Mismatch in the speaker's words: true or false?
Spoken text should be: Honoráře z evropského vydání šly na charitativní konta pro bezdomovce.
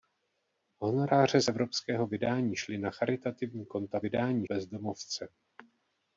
true